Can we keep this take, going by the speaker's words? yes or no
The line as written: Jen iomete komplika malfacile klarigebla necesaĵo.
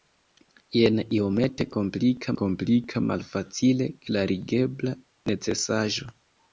no